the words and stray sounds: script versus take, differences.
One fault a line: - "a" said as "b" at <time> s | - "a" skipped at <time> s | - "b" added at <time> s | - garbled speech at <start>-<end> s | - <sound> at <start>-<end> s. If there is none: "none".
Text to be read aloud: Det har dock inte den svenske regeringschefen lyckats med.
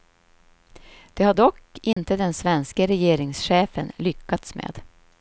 - dropout at 1.9-2.0 s